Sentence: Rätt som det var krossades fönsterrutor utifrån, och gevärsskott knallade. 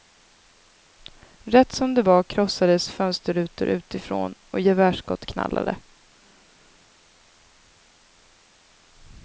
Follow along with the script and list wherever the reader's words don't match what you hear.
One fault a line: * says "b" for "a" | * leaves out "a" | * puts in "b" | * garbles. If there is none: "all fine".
all fine